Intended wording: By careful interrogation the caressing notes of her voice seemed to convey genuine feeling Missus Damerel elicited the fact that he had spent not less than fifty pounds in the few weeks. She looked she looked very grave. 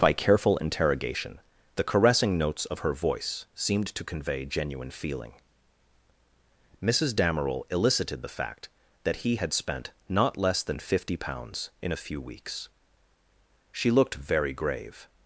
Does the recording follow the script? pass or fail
fail